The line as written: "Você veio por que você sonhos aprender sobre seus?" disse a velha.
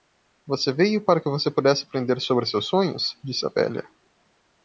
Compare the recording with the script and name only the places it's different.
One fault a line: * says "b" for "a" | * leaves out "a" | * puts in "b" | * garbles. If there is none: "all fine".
* says "para" for "por"
* says "pudesse" for "sonhos"
* puts in "sonhos"